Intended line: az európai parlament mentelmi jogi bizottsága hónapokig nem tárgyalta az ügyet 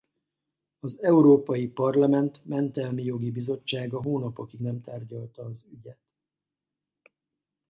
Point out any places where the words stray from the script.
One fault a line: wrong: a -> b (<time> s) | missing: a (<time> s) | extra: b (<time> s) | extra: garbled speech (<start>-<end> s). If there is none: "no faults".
no faults